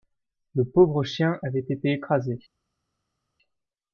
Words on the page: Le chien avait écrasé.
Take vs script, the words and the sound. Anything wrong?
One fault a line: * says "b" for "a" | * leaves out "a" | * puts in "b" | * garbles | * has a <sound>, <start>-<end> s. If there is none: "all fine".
* puts in "pauvre"
* puts in "été"